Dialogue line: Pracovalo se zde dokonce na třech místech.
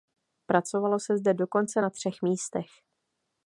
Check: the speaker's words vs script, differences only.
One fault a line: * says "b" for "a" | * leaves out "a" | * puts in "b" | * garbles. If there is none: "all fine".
all fine